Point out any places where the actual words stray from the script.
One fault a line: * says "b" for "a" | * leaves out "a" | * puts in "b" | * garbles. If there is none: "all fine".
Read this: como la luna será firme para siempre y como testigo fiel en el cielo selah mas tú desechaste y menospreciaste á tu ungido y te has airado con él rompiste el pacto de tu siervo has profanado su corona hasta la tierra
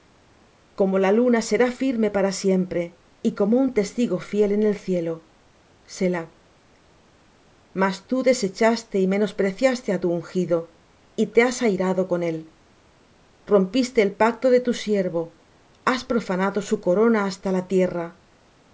* puts in "un"